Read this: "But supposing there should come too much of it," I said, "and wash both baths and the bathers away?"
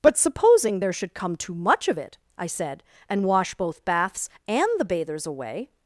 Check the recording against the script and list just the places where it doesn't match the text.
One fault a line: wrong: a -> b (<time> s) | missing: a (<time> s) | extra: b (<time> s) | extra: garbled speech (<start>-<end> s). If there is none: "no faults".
no faults